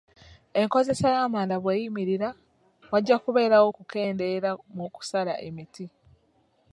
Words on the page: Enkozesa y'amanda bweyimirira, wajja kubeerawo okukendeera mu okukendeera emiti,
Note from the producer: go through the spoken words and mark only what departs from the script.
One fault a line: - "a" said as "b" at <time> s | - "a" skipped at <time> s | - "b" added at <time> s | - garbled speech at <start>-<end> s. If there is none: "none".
- "okukendeera" said as "kusala" at 4.9 s